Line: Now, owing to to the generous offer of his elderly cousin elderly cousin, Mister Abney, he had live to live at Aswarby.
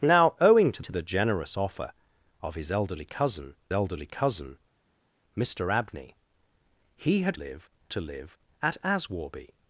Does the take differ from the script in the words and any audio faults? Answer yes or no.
no